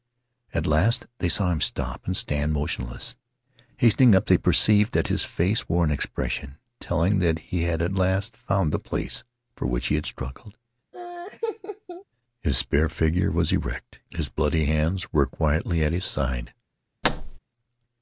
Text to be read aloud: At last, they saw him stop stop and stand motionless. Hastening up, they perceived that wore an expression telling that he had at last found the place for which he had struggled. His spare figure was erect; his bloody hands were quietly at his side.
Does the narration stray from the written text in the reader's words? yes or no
yes